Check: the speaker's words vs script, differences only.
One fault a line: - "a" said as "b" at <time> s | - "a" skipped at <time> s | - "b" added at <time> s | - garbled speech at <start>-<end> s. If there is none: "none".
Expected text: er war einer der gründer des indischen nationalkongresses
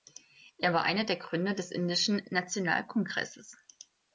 none